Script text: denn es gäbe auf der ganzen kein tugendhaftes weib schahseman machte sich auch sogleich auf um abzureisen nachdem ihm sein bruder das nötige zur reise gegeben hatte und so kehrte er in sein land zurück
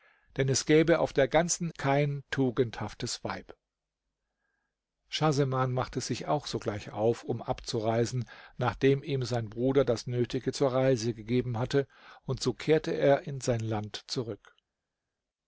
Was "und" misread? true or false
false